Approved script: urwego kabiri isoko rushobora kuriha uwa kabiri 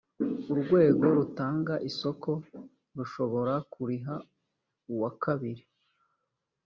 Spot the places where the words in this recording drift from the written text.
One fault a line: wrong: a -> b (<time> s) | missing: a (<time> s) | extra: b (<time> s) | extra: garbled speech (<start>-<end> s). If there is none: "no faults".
wrong: kabiri -> rutanga (1.2 s)